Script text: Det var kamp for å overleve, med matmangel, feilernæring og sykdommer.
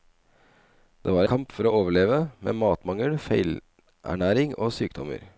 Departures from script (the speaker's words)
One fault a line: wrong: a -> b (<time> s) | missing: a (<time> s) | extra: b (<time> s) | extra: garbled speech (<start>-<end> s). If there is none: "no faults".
no faults